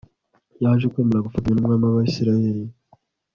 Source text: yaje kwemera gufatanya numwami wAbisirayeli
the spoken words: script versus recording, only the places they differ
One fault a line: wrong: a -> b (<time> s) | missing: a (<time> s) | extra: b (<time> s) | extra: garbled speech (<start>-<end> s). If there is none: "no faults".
no faults